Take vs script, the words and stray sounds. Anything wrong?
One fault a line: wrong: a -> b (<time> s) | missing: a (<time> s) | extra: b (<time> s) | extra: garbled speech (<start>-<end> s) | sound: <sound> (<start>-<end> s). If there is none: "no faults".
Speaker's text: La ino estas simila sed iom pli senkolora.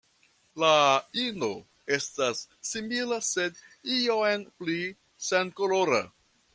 no faults